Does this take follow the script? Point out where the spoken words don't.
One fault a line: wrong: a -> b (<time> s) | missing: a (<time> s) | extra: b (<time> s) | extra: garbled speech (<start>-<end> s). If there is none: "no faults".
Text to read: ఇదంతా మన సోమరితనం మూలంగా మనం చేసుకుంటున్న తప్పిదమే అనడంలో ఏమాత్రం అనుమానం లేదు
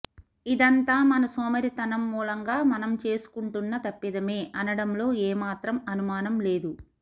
no faults